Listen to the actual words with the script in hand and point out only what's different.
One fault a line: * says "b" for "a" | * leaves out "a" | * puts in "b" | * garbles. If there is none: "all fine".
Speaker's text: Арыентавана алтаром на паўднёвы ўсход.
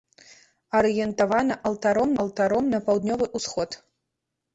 * puts in "алтаром"